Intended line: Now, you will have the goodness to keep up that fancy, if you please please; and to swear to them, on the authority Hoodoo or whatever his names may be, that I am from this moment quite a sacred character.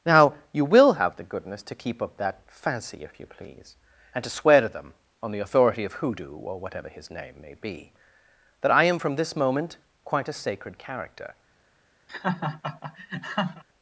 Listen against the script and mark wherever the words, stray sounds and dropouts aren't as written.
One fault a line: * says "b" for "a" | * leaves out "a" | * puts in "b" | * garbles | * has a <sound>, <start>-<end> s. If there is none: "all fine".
* leaves out "please"
* puts in "of"
* says "name" for "names"
* has a laugh, 12.1-13.6 s